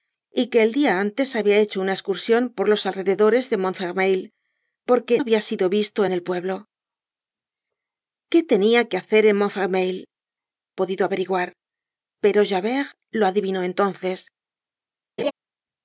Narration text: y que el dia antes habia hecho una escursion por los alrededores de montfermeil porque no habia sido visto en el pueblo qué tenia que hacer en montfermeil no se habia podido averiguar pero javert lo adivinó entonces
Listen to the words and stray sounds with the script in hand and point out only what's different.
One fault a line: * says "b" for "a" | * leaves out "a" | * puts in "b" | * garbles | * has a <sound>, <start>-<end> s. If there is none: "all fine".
* leaves out "no"
* leaves out "no se habia"
* has a laugh, 15.2-15.3 s